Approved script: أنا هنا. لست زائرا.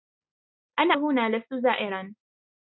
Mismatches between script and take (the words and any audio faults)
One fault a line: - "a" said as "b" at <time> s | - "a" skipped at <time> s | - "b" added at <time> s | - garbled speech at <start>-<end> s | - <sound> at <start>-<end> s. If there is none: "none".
none